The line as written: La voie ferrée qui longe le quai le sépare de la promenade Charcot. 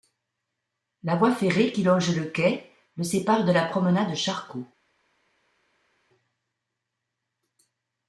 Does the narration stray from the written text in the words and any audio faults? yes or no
no